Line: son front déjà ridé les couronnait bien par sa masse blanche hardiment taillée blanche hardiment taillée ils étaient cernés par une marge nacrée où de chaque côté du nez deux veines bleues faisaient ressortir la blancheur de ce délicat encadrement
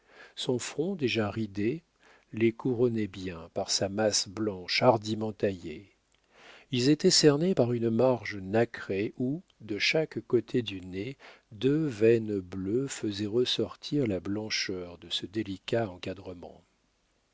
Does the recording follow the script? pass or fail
fail